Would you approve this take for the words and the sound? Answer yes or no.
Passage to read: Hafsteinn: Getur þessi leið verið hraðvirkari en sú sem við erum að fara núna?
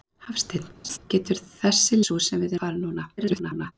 no